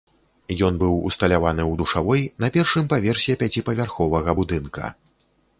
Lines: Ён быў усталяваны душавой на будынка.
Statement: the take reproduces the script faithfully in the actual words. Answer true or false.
false